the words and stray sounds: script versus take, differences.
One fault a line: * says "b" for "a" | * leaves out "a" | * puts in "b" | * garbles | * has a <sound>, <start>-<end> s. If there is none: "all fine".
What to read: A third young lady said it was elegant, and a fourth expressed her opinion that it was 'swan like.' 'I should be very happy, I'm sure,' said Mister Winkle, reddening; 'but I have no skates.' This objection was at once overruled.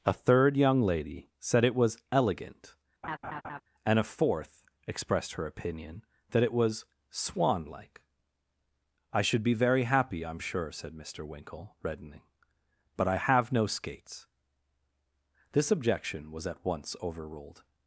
* has a laugh, 3.0-3.6 s